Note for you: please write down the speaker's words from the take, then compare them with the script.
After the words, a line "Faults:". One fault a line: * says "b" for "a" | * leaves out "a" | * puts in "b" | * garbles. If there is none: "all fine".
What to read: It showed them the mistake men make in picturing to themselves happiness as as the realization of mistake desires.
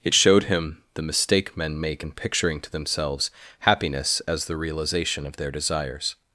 It showed him the mistake men make in picturing to themselves happiness as the realization of their desires.
Faults:
* says "him" for "them"
* leaves out "as"
* says "their" for "mistake"